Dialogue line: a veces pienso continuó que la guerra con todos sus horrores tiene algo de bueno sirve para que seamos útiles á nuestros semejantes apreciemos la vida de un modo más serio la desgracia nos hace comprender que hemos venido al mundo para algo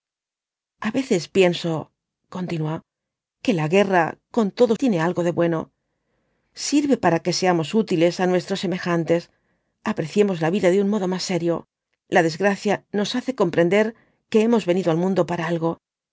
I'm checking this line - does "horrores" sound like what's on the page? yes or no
no